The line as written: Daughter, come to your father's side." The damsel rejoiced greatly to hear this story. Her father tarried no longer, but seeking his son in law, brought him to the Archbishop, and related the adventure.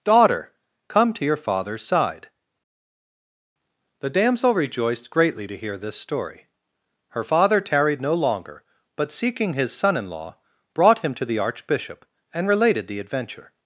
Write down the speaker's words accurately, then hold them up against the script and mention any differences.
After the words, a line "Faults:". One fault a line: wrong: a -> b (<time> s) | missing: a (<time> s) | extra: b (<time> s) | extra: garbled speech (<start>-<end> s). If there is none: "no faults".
Daughter, come to your father's side." The damsel rejoiced greatly to hear this story. Her father tarried no longer, but seeking his son in law, brought him to the Archbishop, and related the adventure.
Faults:
no faults